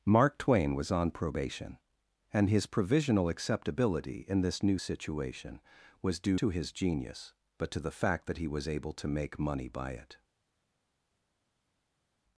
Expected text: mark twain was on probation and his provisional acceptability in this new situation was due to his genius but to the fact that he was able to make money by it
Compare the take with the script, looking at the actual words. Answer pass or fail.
pass